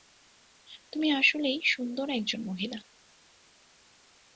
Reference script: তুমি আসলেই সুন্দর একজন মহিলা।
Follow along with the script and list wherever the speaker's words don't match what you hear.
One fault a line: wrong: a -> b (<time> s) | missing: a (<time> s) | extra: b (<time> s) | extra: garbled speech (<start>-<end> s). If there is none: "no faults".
no faults